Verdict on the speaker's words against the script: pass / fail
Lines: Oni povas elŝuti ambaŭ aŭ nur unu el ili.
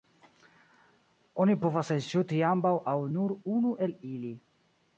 pass